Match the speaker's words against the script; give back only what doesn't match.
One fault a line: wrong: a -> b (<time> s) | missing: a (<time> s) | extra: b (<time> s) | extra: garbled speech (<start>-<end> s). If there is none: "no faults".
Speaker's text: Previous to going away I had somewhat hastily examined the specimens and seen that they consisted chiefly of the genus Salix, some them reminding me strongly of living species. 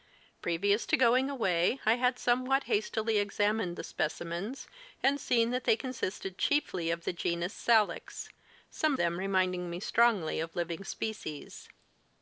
no faults